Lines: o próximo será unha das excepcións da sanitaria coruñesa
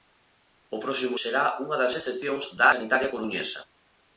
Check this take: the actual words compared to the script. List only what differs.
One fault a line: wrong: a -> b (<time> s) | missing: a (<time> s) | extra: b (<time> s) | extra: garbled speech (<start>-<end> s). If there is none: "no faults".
no faults